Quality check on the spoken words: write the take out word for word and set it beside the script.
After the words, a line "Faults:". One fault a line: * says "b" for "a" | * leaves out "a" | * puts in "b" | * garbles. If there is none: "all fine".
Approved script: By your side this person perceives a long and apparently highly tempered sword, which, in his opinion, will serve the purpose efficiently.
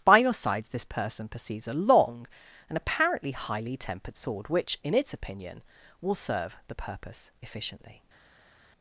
By your sides this person perceives a long and apparently highly tempered sword, which, in its opinion, will serve the purpose efficiently.
Faults:
* says "sides" for "side"
* says "its" for "his"